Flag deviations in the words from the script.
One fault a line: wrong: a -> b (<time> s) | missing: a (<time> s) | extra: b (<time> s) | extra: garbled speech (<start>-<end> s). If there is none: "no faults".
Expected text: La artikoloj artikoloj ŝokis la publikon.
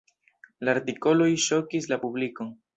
missing: artikoloj (1.3 s)